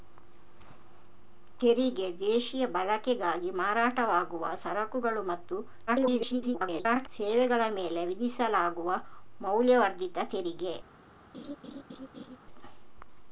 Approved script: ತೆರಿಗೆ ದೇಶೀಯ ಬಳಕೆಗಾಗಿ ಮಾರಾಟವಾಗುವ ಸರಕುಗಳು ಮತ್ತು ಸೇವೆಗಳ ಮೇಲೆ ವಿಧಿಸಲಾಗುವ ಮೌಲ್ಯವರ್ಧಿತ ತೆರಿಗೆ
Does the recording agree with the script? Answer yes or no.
no